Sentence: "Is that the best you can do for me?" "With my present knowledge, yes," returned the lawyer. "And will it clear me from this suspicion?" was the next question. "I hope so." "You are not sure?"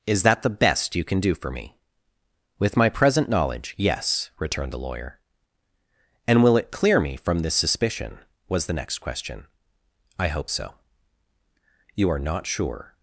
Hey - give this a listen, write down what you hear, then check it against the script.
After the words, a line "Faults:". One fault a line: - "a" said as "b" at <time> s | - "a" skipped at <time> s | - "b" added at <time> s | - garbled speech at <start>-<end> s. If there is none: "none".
"Is that the best you can do for me?" "With my present knowledge, yes," returned the lawyer. "And will it clear me from this suspicion?" was the next question. "I hope so." "You are not sure?"
Faults:
none